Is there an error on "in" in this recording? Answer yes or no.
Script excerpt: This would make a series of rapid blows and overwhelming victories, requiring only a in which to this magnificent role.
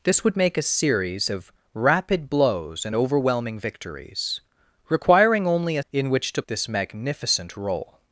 no